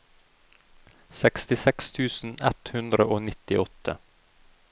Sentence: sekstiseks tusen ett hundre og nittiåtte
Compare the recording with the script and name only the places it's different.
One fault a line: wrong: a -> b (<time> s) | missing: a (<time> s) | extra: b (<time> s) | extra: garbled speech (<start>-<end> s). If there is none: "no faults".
no faults